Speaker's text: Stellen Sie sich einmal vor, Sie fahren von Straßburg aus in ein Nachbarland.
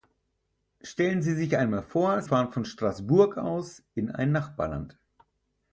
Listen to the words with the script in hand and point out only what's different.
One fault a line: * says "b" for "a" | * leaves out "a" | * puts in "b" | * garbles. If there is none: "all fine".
* leaves out "Sie"